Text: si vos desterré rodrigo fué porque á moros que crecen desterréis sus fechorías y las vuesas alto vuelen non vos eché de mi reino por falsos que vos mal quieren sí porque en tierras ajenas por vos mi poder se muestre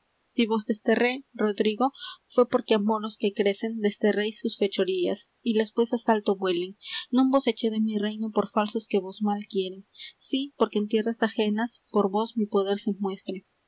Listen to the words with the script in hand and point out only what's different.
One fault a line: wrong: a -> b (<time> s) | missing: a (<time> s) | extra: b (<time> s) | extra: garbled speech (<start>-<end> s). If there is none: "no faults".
no faults